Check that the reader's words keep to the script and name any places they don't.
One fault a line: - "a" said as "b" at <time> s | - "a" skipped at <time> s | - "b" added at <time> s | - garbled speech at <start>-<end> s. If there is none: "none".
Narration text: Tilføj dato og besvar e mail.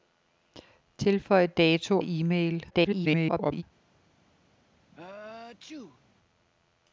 - "og besvar" skipped at 2.0 s
- garbled speech at 2.7-3.6 s